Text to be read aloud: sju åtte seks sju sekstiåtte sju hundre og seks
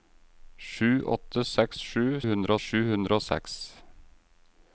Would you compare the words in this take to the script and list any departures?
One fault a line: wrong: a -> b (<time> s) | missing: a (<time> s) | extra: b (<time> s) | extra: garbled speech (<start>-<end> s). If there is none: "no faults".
wrong: sekstiåtte -> hundre (2.3 s)